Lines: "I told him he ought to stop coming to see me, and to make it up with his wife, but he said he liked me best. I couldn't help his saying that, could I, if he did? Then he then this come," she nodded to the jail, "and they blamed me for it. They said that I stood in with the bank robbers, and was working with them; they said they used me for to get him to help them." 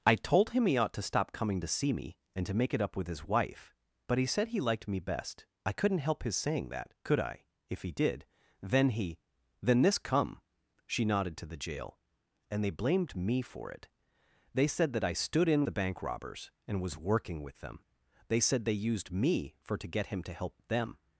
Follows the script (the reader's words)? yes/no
no